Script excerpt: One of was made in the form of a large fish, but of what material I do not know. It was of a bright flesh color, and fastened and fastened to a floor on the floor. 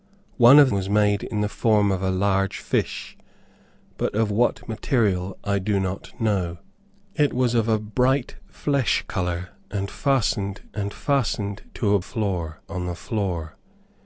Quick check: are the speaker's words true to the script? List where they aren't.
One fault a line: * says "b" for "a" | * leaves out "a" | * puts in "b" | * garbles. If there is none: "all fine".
all fine